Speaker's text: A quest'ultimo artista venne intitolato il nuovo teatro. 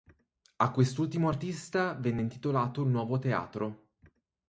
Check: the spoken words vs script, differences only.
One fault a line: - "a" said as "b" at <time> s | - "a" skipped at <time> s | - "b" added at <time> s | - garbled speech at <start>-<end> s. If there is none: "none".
none